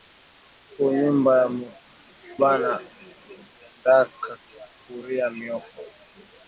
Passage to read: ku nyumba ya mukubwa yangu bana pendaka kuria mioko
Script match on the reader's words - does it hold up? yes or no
no